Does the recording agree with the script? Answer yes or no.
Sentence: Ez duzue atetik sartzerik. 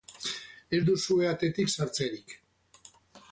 yes